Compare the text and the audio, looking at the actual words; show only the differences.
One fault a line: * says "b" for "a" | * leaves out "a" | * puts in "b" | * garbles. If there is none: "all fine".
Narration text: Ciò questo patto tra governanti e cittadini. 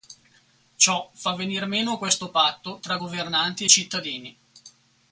* puts in "fa venir meno"